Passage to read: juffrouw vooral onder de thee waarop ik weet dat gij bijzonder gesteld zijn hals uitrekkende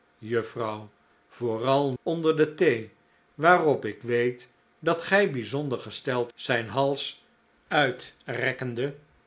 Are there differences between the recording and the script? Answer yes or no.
no